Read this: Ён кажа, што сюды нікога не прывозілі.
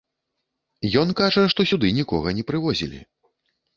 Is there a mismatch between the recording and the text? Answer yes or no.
no